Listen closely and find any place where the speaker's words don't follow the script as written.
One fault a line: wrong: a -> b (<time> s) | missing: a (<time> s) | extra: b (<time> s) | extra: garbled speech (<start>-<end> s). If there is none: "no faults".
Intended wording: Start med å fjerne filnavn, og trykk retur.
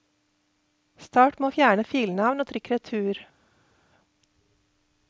no faults